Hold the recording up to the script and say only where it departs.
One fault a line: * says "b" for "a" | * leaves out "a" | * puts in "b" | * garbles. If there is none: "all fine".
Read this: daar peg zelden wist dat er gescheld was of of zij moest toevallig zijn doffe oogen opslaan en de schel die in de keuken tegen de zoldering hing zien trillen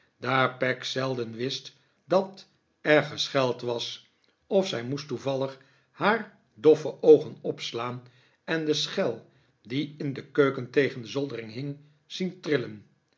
* leaves out "of"
* says "haar" for "zijn"